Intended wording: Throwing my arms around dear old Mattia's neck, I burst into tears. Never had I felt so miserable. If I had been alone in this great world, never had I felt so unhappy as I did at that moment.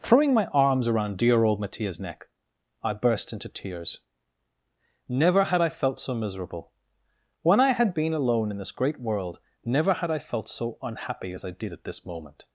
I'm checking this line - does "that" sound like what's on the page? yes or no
no